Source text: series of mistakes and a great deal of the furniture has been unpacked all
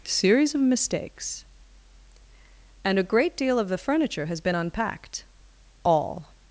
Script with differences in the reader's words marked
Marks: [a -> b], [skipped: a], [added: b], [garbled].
series of mistakes and a great deal of the furniture has been unpacked all